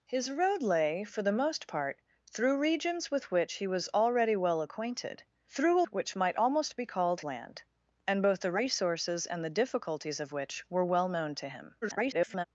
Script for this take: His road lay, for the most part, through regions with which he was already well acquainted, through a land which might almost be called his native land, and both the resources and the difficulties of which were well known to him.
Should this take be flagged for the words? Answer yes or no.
yes